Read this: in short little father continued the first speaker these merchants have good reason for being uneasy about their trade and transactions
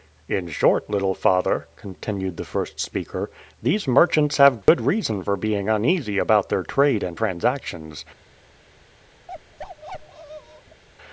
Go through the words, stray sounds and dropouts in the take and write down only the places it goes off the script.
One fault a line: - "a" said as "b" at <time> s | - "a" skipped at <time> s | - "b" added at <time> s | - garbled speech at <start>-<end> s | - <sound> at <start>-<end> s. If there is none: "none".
- dropout at 4.6-4.7 s
- bark at 9.3-10.8 s